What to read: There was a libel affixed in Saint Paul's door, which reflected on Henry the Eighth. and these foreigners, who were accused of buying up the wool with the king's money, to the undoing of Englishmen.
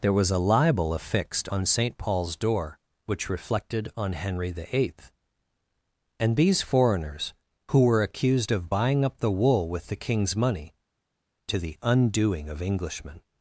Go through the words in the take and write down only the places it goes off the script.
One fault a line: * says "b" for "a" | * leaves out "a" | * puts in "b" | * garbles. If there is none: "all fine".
* says "on" for "in"